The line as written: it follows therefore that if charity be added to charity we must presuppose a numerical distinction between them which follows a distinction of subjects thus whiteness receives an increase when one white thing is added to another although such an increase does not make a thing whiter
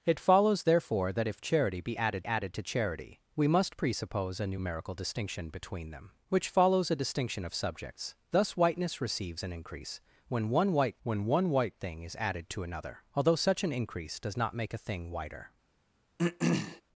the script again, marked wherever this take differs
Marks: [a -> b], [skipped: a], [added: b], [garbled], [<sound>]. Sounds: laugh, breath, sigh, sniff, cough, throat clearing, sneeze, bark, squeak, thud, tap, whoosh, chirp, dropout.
it follows therefore that if charity be added [added: added] to charity we must presuppose a numerical distinction between them which follows a distinction of subjects thus whiteness receives an increase when one white [added: when one white] thing is added to another although such an increase does not make a thing whiter [throat clearing]